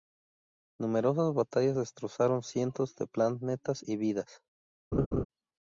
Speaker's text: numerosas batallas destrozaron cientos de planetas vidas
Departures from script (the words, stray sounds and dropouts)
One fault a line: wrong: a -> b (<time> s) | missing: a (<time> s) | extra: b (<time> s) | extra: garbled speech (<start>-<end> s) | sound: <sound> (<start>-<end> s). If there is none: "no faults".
extra: y (3.8 s)
sound: laugh (4.9-5.2 s)